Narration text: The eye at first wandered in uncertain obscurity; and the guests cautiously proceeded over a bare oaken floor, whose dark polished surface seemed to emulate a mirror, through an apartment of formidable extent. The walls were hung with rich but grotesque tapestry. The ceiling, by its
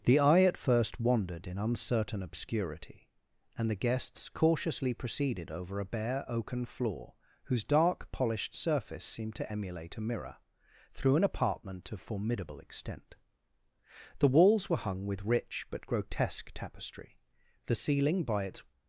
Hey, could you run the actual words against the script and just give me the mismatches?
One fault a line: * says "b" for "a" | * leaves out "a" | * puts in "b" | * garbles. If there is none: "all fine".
all fine